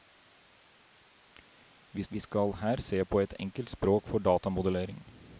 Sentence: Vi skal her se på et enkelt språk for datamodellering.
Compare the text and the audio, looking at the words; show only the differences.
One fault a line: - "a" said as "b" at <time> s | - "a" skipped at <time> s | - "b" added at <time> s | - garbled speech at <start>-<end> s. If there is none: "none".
- "vi" added at 2.1 s